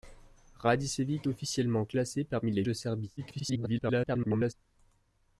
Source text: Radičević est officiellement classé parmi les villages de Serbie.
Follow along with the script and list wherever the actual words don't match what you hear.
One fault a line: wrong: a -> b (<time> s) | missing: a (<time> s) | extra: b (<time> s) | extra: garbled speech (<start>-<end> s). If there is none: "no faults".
missing: est (1.3 s)
missing: villages (2.6 s)
extra: garbled speech (3.2-4.5 s)